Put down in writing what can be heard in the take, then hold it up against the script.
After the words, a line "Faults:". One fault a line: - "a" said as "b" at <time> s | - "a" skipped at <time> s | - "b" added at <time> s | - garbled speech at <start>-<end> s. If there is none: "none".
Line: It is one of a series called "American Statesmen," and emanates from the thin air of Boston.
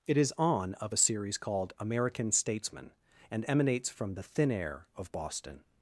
It is on of a series called "American Statesmen," and emanates from the thin air of Boston.
Faults:
- "one" said as "on" at 0.3 s